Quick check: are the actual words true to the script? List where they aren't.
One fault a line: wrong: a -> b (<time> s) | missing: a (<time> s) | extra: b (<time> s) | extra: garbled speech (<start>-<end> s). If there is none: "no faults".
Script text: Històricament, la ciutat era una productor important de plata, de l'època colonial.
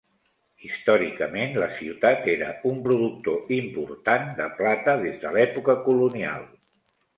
wrong: una -> un (2.7 s)
extra: des (5.1 s)